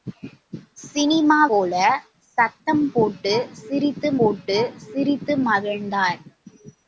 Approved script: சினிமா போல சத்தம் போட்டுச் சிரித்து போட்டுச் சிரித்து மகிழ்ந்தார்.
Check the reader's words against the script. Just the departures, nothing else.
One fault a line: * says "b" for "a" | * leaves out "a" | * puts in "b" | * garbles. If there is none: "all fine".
all fine